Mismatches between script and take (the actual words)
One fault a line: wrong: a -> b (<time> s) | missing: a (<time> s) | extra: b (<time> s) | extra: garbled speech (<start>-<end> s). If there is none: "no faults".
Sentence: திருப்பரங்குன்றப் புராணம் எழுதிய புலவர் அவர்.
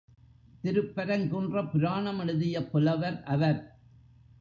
no faults